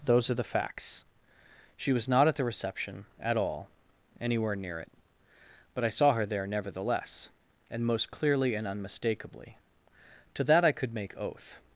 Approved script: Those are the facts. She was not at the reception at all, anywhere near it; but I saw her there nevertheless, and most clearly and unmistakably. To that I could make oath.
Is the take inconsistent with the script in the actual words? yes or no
no